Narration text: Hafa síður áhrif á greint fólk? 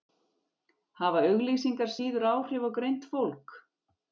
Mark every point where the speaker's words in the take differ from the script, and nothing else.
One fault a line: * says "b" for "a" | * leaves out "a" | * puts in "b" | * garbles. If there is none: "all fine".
* puts in "auglýsingar"